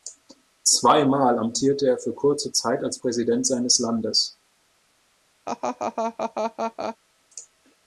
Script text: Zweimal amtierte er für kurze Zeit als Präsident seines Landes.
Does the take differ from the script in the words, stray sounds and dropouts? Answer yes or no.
yes